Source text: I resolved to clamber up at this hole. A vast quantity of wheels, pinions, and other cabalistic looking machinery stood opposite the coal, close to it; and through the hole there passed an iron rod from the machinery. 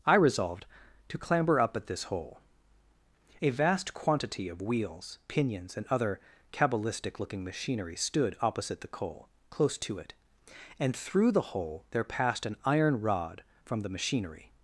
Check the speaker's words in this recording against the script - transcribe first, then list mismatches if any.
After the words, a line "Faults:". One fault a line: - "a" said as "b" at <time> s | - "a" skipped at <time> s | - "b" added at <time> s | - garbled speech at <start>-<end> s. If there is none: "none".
I resolved to clamber up at this hole. A vast quantity of wheels, pinions, and other cabalistic looking machinery stood opposite the coal, close to it; and through the hole there passed an iron rod from the machinery.
Faults:
none